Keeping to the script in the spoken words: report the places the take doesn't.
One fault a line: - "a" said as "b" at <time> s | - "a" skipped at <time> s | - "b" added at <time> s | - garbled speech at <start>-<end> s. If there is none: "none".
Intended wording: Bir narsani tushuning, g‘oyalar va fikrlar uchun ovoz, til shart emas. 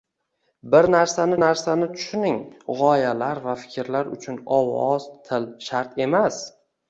- "narsani" added at 1.4 s